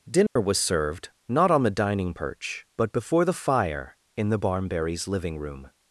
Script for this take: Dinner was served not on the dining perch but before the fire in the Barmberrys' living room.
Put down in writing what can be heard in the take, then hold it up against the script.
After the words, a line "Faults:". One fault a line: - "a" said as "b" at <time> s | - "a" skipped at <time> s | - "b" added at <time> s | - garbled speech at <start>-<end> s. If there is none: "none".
Dinner was served not on the dining perch but before the fire in the Barmberrys' living room.
Faults:
none